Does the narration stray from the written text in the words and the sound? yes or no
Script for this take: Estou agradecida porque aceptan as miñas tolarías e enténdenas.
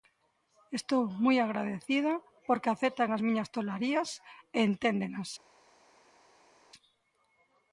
yes